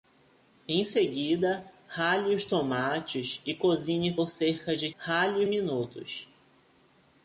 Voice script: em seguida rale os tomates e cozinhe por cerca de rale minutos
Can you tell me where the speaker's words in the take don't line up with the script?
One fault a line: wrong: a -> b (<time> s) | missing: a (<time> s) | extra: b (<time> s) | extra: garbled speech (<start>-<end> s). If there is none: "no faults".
no faults